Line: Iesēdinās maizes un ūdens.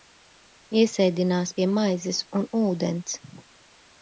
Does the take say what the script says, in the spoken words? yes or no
no